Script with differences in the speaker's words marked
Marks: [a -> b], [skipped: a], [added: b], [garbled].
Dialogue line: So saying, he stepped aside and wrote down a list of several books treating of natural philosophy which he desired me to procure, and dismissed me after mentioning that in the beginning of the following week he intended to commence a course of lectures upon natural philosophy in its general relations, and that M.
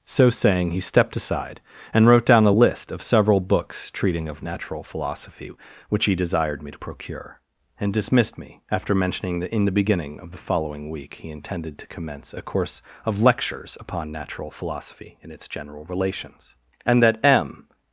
So saying, he stepped aside and wrote down a list of several books treating of natural philosophy which he desired me to procure, and dismissed me after mentioning that in the beginning of the following week he intended to commence a course of lectures upon natural philosophy in its general relations, and that M.